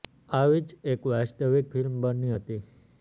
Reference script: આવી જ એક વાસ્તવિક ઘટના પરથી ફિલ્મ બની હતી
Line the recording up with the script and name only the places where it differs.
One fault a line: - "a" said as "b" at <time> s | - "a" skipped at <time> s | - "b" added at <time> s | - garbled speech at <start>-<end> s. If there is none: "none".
- "ઘટના પરથી" skipped at 1.7 s